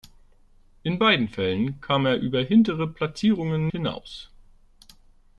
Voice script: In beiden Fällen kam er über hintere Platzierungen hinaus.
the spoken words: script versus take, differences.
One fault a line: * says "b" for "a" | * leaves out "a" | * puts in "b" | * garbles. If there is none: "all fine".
all fine